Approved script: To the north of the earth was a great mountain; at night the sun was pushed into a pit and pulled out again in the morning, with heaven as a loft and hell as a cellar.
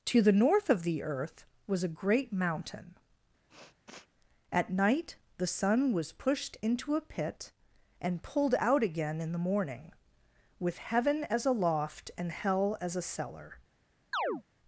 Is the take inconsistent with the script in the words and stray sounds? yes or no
yes